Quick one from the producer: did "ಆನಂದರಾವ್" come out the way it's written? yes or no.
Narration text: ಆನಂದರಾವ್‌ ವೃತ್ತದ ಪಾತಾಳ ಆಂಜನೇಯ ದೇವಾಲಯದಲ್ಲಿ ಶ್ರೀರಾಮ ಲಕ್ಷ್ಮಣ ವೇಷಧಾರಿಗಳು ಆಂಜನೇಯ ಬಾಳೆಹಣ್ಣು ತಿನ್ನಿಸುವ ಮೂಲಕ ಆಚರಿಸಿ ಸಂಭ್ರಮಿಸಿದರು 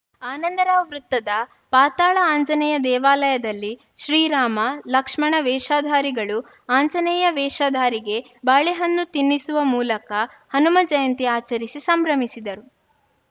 yes